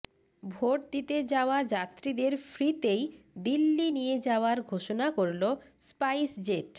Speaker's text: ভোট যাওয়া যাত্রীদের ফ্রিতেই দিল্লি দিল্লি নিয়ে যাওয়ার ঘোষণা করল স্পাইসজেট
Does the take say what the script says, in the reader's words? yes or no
no